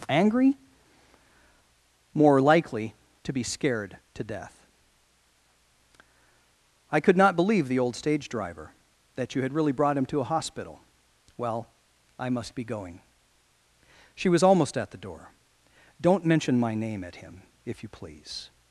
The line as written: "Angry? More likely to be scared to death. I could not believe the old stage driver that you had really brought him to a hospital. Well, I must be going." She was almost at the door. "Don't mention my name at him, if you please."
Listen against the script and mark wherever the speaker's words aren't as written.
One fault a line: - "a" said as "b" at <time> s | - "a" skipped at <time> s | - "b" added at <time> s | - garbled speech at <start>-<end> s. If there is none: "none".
none